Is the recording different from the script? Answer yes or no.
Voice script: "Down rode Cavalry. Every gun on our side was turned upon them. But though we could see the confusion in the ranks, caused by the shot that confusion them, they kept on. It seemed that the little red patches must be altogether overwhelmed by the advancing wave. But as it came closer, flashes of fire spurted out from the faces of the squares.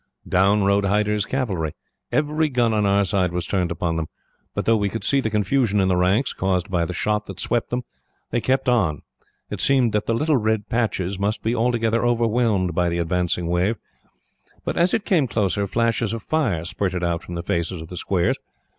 yes